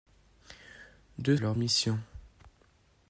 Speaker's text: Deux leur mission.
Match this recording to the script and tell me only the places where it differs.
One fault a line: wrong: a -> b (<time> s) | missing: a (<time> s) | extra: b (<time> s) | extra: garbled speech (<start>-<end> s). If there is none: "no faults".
no faults